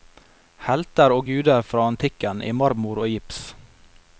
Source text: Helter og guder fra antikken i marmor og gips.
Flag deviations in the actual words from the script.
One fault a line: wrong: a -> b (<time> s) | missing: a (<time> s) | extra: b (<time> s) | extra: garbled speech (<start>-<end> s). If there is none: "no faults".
no faults